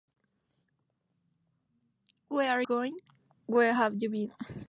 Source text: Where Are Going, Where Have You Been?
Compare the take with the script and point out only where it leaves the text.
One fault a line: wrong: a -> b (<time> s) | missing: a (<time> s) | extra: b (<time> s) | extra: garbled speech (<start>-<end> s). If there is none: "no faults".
no faults